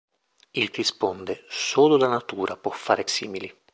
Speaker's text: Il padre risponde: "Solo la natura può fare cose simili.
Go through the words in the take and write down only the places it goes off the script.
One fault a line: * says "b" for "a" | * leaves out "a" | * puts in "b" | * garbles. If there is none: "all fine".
* leaves out "padre"
* leaves out "cose"